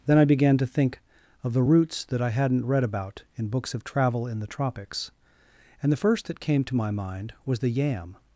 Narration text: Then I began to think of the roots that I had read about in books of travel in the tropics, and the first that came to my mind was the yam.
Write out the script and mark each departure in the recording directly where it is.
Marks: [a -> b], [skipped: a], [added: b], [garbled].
Then I began to think of the roots that I [had -> hadn't] read about in books of travel in the tropics, and the first that came to my mind was the yam.